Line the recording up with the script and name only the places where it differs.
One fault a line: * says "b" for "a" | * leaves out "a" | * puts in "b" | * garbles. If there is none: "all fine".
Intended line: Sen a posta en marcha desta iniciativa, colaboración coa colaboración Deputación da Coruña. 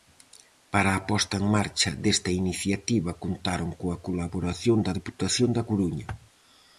* says "Para" for "Sen"
* says "contaron" for "colaboración"
* puts in "da"